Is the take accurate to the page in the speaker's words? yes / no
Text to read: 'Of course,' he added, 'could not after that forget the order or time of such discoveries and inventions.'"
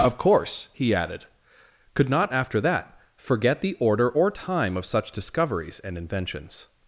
yes